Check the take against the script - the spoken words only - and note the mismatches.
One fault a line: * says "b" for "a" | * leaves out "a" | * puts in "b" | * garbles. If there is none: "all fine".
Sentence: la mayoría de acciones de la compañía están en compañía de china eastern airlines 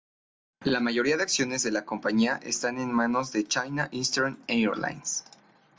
* says "manos" for "compañía"